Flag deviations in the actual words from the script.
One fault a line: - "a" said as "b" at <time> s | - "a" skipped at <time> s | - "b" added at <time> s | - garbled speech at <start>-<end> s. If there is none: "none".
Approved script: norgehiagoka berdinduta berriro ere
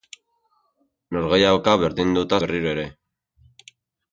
none